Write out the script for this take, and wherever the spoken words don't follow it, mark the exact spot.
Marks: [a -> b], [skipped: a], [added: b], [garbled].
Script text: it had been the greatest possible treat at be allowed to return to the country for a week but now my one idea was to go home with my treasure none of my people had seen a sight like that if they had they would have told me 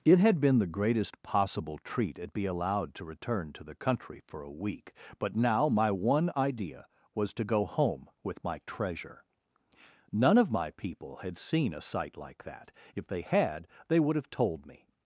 it had been the greatest possible treat at be allowed to return to the country for a week but now my one idea was to go home with my treasure none of my people had seen a sight like that if they had they would have told me